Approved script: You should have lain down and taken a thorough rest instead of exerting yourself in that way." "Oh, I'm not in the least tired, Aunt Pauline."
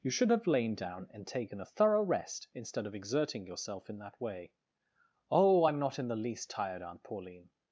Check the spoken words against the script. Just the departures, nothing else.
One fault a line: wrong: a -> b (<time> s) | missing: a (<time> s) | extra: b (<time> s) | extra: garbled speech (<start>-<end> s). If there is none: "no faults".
no faults